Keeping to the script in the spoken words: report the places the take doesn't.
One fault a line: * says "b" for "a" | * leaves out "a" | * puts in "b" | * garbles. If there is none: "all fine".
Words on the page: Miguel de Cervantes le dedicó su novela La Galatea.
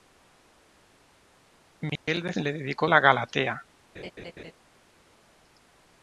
* leaves out "Cervantes"
* leaves out "su novela"